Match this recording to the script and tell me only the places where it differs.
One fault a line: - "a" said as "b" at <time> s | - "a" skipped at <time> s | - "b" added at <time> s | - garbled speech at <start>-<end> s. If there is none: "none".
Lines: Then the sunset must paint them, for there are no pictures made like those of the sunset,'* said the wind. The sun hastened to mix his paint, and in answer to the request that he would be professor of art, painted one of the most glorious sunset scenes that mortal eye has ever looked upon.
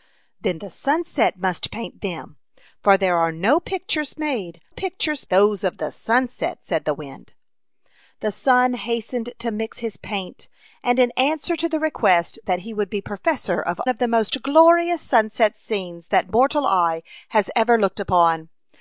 - "like" said as "pictures" at 4.7 s
- "art painted one" skipped at 13.8 s